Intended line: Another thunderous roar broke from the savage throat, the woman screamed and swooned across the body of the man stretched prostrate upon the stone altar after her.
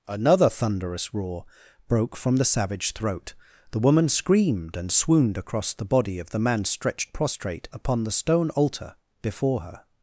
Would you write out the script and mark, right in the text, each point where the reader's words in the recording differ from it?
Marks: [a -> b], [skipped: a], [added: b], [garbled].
Another thunderous roar broke from the savage throat, the woman screamed and swooned across the body of the man stretched prostrate upon the stone altar [after -> before] her.